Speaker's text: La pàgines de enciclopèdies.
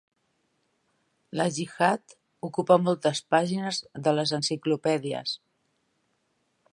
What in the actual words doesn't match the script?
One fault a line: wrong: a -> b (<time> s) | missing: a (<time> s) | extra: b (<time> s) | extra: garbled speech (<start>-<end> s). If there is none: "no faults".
extra: gihad ocupa moltes (1.6 s)
extra: les (4.2 s)